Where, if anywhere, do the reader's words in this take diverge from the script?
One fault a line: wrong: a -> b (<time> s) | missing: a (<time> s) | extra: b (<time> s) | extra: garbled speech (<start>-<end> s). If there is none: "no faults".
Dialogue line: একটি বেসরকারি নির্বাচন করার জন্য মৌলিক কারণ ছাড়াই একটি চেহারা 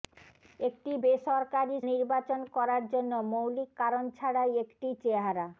no faults